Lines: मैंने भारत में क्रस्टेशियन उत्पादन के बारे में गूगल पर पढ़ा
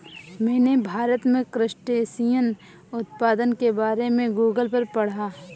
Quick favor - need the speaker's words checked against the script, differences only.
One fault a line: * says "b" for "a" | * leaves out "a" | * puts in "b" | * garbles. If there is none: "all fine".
all fine